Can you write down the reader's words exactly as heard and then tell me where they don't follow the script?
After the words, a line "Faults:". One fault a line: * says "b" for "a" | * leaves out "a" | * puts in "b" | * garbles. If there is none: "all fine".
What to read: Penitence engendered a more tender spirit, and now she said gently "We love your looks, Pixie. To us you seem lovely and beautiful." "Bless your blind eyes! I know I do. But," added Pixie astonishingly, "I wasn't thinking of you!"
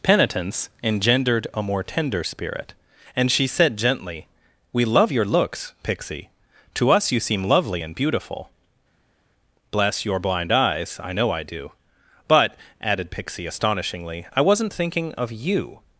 Penitence engendered a more tender spirit, and she said gently "We love your looks, Pixie. To us you seem lovely and beautiful." "Bless your blind eyes! I know I do. But," added Pixie astonishingly, "I wasn't thinking of you!"
Faults:
* leaves out "now"